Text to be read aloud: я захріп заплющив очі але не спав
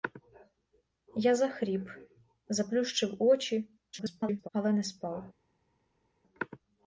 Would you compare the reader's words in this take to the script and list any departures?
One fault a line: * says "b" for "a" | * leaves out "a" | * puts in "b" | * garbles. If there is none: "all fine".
* garbles